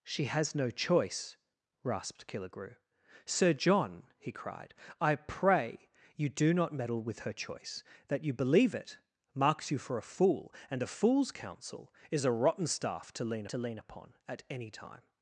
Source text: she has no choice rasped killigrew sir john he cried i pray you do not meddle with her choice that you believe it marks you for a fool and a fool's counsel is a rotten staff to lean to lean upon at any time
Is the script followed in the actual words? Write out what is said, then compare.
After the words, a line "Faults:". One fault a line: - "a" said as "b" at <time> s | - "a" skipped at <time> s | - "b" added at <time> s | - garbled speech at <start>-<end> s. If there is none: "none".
she has no choice rasped killigrew sir john he cried i pray you do not meddle with her choice that you believe it marks you for a fool and a fool's counsel is a rotten staff to lean to lean upon at any time
Faults:
none